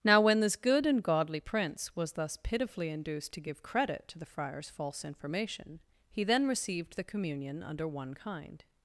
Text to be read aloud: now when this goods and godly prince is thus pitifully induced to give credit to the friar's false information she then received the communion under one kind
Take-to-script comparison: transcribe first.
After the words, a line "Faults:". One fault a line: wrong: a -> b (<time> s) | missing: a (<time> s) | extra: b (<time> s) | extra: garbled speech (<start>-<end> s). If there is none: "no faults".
now when this good and godly prince was thus pitifully induced to give credit to the friar's false information he then received the communion under one kind
Faults:
wrong: goods -> good (0.6 s)
wrong: is -> was (2.0 s)
wrong: she -> he (6.1 s)